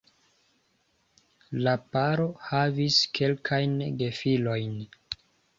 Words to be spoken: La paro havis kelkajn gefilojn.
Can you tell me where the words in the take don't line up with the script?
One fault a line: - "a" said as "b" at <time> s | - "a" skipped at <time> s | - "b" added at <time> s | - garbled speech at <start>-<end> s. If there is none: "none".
none